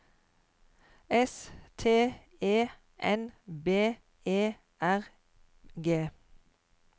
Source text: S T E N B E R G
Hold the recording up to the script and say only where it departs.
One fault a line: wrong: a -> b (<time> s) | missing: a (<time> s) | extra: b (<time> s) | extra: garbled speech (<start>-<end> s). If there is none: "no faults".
no faults